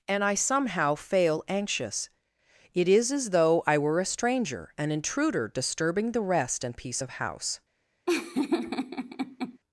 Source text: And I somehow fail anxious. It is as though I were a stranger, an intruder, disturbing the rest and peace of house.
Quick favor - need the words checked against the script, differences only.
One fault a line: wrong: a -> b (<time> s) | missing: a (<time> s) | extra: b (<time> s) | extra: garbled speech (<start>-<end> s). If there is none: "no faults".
no faults